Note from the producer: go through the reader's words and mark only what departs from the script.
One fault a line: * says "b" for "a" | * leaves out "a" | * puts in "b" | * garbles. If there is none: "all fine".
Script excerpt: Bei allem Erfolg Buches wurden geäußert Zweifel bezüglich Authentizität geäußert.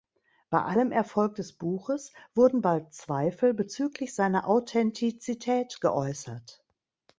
* puts in "des"
* says "bald" for "geäußert"
* puts in "seiner"